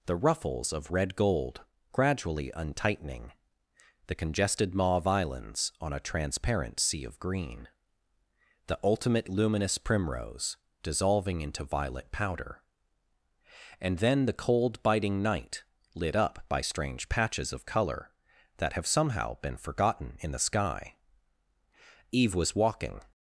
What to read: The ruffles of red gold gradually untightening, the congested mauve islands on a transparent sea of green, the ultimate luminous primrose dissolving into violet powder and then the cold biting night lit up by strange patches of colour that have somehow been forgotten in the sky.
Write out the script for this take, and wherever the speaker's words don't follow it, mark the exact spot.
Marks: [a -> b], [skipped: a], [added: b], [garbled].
The ruffles of red gold gradually untightening, the congested mauve islands on a transparent sea of green, the ultimate luminous primrose dissolving into violet powder and then the cold biting night lit up by strange patches of colour that have somehow been forgotten in the sky. [added: Eve was walking]